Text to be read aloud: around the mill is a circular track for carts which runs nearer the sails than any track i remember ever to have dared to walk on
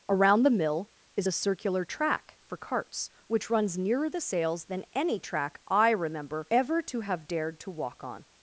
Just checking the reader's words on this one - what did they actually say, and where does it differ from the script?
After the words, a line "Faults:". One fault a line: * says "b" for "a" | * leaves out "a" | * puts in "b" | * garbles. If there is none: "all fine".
around the mill is a circular track for carts which runs nearer the sails than any track i remember ever to have dared to walk on
Faults:
all fine